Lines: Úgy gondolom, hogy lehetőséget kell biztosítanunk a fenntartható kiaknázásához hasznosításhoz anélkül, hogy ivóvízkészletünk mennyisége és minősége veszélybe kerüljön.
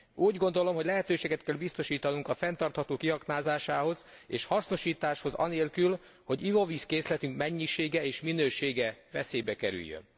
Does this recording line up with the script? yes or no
no